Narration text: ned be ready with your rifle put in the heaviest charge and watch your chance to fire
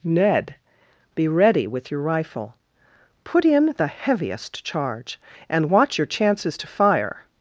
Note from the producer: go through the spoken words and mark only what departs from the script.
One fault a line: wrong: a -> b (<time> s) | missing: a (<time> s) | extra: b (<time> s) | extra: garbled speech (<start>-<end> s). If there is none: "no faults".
wrong: chance -> chances (6.1 s)